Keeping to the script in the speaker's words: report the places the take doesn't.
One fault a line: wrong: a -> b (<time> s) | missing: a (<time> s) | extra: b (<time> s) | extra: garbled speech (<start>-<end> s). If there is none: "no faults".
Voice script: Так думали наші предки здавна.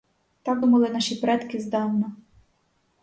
no faults